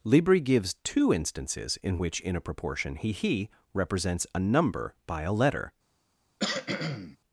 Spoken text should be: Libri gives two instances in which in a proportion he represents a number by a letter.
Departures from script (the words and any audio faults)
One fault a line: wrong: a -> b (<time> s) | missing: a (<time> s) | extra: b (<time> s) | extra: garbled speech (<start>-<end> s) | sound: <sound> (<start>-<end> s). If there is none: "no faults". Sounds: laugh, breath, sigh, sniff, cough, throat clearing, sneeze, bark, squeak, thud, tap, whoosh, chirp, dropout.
extra: he (3.1 s)
sound: cough (6.4-7.2 s)